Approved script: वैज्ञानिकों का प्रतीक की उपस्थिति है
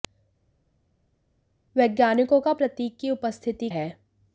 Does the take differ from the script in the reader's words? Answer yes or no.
no